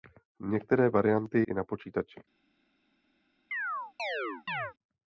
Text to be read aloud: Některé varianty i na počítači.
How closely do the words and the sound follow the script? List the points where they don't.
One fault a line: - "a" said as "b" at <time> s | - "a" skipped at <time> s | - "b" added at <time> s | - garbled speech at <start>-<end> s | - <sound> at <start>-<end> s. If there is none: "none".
- chirp at 3.5-4.7 s